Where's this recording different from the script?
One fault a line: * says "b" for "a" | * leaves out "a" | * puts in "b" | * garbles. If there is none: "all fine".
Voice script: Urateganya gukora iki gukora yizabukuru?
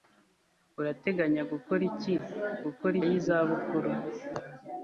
all fine